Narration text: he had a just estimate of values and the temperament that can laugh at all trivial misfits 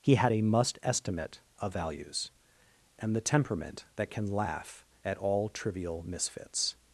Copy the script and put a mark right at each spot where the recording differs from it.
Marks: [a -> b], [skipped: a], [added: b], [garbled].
he had a [just -> must] estimate of values and the temperament that can laugh at all trivial misfits